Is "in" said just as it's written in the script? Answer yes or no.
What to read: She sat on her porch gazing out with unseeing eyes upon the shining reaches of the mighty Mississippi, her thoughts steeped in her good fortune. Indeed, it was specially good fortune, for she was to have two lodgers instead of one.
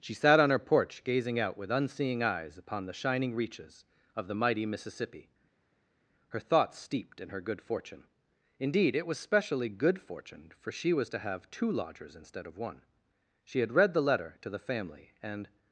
yes